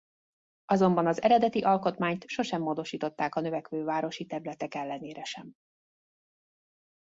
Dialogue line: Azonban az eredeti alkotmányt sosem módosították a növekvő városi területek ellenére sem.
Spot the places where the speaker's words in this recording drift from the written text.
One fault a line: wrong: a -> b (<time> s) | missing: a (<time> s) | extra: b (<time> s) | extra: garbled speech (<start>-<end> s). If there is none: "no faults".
no faults